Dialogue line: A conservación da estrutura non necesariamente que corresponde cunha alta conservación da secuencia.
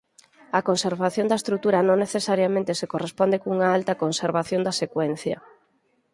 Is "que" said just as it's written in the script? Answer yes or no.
no